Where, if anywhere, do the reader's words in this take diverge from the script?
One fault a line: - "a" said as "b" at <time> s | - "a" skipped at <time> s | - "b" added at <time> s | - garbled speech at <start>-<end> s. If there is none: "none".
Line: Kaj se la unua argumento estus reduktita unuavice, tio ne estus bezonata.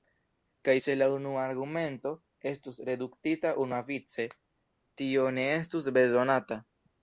none